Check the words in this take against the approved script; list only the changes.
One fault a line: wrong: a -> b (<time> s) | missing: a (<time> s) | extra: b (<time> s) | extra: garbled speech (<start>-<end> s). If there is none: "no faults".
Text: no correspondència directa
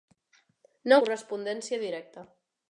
no faults